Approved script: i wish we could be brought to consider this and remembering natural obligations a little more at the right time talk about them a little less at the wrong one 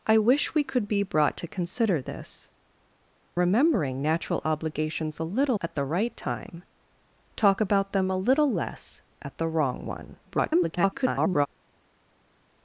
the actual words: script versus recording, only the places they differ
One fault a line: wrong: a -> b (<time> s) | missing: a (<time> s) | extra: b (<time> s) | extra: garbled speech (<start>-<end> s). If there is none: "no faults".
missing: and (2.5 s)
missing: more (5.6 s)
extra: garbled speech (10.3-11.5 s)